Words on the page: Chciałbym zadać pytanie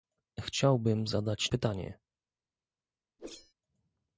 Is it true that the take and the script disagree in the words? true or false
false